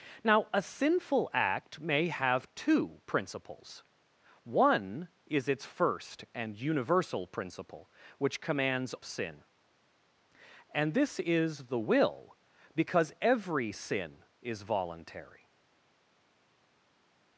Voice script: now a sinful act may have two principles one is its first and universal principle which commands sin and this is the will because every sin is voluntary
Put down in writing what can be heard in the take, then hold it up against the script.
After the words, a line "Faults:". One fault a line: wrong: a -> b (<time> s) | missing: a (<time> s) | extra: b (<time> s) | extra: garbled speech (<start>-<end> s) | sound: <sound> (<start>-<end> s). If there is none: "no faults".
now a sinful act may have two principles one is its first and universal principle which commands sin and this is the will because every sin is voluntary
Faults:
no faults